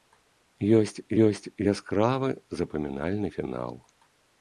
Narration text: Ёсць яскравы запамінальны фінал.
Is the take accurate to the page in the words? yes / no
no